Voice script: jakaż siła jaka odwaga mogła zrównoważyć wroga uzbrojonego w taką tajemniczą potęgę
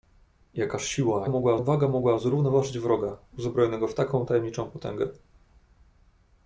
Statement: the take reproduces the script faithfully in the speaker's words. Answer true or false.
false